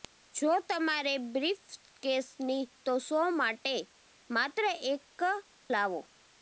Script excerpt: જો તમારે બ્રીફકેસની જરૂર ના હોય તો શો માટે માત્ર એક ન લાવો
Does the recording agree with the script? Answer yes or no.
no